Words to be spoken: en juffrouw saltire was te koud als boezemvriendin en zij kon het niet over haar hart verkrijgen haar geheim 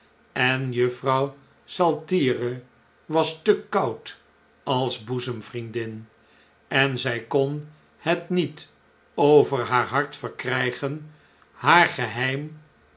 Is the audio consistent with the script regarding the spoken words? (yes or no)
yes